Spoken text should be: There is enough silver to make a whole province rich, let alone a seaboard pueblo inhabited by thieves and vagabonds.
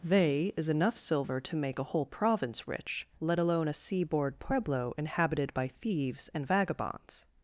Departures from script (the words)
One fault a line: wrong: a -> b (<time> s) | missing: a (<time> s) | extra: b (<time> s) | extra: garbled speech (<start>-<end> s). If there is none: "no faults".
wrong: There -> They (0.0 s)